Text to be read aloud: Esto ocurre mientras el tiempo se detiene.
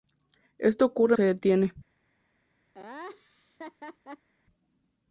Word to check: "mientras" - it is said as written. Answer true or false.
false